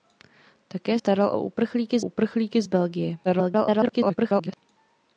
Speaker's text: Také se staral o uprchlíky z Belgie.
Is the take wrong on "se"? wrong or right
wrong